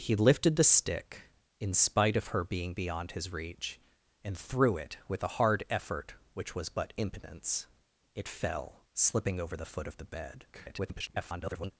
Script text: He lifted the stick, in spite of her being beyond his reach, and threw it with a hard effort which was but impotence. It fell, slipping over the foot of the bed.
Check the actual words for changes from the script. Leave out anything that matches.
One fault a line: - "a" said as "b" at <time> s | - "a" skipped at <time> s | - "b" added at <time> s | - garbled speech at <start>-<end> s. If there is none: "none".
- garbled speech at 10.5-11.7 s